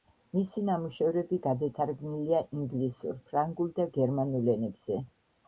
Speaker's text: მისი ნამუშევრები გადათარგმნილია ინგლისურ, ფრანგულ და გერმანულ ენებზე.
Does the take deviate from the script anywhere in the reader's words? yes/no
no